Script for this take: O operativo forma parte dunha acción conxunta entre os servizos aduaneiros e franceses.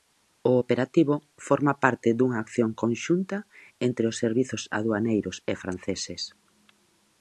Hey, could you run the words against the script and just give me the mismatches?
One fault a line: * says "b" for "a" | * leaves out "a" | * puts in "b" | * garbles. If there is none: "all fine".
all fine